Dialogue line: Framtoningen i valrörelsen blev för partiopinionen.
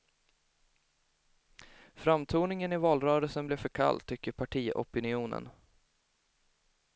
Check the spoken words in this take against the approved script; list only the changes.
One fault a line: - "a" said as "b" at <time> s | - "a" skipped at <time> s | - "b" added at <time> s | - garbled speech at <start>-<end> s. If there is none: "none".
- "kall tycker" added at 3.7 s